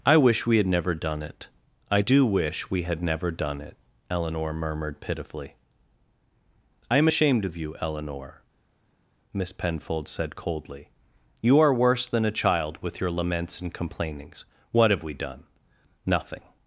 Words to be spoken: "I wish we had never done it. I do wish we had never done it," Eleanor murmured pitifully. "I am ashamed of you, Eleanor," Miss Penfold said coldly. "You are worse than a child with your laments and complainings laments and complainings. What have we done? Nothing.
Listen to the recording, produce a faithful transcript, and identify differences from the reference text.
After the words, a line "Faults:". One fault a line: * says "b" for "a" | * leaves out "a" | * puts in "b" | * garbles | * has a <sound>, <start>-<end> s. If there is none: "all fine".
"I wish we had never done it. I do wish we had never done it," Eleanor murmured pitifully. "I am ashamed of you, Eleanor," Miss Penfold said coldly. "You are worse than a child with your laments and complainings. What have we done? Nothing.
Faults:
* leaves out "laments and complainings"